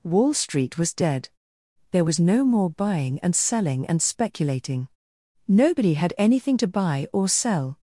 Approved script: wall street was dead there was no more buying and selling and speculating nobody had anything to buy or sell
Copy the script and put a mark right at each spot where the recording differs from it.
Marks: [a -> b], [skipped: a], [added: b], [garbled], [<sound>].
wall street was dead there was no more buying and selling and speculating nobody had anything to buy or sell